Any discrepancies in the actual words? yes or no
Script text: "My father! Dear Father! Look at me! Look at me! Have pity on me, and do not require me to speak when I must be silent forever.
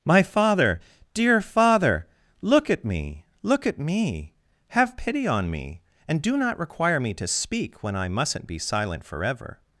yes